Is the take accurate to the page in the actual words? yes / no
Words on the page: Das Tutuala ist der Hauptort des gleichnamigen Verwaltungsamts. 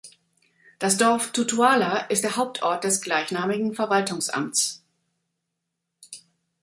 no